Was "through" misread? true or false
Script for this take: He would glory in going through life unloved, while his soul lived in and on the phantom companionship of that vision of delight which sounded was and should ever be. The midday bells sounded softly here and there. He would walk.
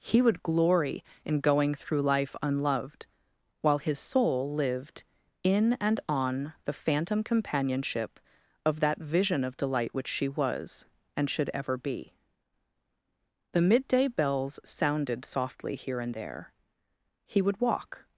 false